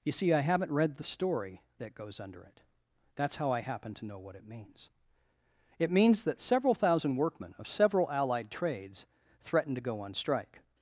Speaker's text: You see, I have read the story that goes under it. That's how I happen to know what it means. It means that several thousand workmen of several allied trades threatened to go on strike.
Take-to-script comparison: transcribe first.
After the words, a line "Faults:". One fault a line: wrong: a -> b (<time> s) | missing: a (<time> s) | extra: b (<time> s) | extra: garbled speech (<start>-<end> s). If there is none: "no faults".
You see, I haven't read the story that goes under it. That's how I happen to know what it means. It means that several thousand workmen of several allied trades threatened to go on strike.
Faults:
wrong: have -> haven't (0.4 s)